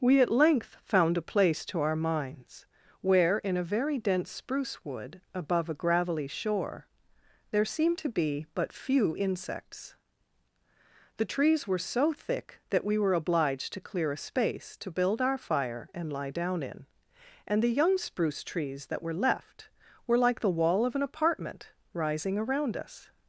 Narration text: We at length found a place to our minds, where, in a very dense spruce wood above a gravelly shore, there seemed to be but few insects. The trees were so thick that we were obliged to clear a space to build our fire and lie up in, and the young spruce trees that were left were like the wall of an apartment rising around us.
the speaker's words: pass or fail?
fail